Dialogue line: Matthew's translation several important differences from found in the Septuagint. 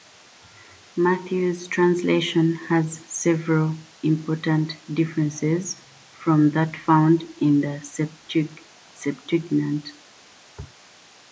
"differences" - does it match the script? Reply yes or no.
yes